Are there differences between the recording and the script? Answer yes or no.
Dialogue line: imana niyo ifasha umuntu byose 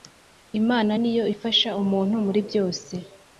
yes